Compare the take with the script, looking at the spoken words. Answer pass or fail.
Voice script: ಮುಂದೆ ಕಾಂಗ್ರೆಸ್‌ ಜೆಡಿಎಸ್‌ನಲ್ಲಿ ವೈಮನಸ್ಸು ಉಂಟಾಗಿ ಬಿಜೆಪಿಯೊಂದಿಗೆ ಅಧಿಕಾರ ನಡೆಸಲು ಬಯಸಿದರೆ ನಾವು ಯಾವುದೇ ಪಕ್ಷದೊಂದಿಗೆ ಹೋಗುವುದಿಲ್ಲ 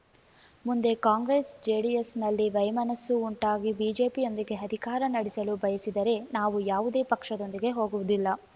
pass